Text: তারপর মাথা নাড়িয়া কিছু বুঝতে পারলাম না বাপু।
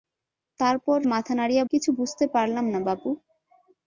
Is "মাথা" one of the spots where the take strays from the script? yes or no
no